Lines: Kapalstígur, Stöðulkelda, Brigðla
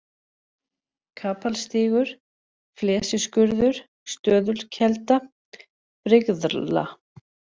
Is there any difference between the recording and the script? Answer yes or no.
yes